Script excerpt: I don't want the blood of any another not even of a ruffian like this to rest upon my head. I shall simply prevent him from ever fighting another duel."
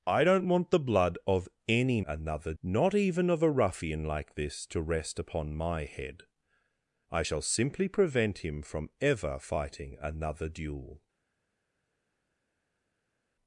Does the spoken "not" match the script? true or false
true